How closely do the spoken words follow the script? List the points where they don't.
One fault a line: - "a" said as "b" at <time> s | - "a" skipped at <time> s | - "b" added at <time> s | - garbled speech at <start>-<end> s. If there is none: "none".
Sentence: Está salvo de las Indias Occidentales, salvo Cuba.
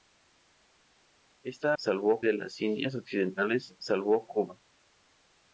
none